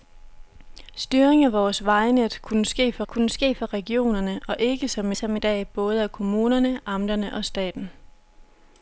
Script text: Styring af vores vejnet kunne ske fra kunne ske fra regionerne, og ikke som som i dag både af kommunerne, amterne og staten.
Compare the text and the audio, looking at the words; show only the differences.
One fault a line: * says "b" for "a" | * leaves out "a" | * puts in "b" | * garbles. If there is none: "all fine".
all fine